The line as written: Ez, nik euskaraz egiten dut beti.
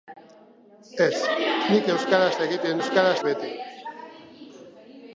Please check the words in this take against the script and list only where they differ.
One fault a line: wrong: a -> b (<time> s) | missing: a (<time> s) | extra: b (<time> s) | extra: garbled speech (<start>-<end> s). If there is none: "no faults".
wrong: dut -> euskaraz (2.8 s)